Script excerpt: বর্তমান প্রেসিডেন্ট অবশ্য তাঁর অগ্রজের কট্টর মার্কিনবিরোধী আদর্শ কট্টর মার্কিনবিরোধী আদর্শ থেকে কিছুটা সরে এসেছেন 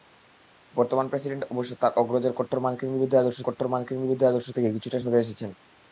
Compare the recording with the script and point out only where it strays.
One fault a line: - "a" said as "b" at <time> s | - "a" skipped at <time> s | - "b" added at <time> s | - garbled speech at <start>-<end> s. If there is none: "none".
none